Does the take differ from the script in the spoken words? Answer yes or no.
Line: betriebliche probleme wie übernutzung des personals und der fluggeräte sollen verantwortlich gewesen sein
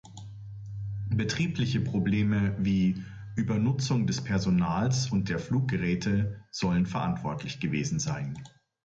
no